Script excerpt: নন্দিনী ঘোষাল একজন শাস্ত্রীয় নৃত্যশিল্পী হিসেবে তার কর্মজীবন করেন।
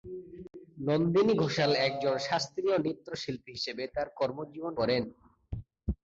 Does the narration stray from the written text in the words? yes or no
no